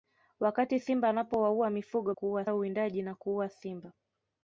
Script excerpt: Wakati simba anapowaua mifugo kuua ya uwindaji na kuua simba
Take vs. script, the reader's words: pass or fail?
pass